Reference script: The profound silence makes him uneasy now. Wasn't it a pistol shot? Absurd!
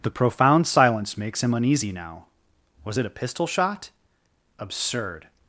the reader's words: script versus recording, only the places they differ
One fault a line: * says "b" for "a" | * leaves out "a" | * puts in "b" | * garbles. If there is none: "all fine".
* says "Was" for "Wasn't"